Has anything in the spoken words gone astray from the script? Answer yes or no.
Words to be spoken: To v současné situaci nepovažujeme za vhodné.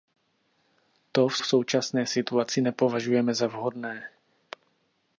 yes